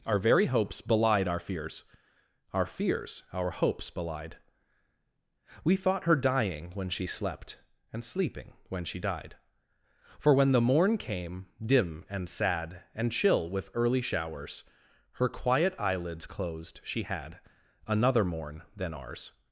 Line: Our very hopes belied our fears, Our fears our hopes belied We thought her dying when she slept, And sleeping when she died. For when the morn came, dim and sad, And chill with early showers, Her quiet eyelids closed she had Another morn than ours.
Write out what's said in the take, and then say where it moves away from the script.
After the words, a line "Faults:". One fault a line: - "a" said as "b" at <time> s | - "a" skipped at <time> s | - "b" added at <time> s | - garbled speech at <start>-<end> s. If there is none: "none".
Our very hopes belied our fears, Our fears our hopes belied We thought her dying when she slept, And sleeping when she died. For when the morn came, dim and sad, And chill with early showers, Her quiet eyelids closed she had Another morn than ours.
Faults:
none